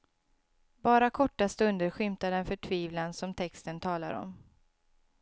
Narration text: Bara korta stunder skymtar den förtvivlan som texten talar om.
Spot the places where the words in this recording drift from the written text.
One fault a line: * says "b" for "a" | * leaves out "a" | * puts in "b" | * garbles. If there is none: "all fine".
all fine